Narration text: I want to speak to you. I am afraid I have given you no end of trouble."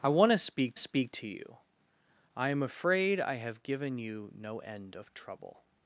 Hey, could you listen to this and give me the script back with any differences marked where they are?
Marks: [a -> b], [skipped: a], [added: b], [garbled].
I want to speak [added: speak] to you. I am afraid I have given you no end of trouble."